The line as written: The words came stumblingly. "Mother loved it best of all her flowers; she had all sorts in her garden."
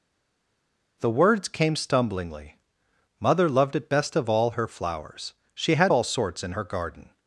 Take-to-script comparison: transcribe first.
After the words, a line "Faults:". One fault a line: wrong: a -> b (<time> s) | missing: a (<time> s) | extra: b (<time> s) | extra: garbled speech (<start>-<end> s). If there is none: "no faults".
The words came stumblingly. "Mother loved it best of all her flowers; she had all sorts in her garden."
Faults:
no faults